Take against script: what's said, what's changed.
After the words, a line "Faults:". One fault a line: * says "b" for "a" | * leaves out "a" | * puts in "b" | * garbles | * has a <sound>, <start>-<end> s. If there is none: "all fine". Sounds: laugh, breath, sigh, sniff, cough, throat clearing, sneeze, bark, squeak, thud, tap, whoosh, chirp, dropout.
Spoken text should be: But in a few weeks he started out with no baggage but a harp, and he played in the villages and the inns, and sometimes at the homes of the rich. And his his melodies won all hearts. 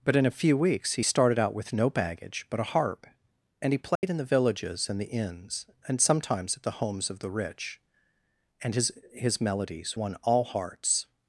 But in a few weeks he started out with no baggage but a harp, and he played in the villages and the inns, and sometimes at the homes of the rich. And his his melodies won all hearts.
Faults:
* has a dropout, 4.0-4.0 s